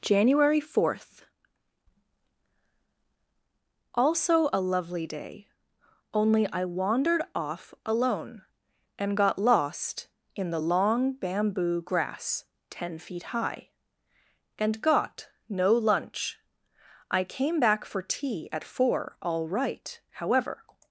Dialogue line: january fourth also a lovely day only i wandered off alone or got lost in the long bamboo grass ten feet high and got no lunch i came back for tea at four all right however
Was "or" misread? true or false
true